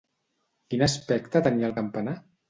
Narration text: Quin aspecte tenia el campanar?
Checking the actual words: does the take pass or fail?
pass